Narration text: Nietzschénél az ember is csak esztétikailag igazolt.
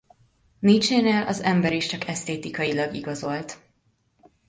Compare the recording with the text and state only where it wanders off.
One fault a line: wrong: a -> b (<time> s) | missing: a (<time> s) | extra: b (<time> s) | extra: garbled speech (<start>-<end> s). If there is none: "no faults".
no faults